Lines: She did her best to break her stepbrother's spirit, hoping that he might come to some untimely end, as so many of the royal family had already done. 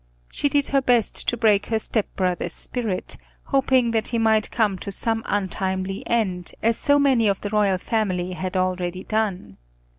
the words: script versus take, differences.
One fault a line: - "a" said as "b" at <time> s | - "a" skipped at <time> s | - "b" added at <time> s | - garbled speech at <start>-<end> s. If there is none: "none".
none